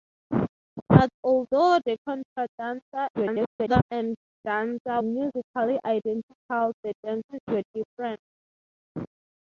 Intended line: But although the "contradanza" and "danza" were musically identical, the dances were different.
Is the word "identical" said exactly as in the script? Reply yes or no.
yes